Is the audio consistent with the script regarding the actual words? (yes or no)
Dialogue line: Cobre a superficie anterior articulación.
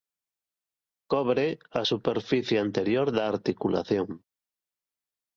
no